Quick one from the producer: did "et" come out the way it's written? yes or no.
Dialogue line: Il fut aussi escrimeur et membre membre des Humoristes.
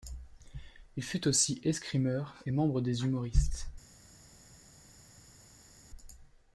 yes